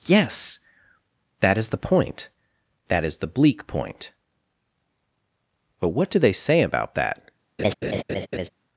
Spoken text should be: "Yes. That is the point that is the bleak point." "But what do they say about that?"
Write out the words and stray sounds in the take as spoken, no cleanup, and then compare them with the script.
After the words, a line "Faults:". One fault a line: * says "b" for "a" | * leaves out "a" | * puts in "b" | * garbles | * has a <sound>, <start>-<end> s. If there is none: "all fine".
"Yes. That is the point that is the bleak point." "But what do they say about that?"
Faults:
* has a laugh, 7.6-8.5 s